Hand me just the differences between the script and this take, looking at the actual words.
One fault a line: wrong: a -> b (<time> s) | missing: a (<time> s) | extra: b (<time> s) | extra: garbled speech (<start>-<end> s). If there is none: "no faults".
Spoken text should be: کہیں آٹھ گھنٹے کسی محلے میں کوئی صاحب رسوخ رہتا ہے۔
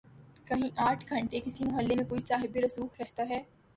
no faults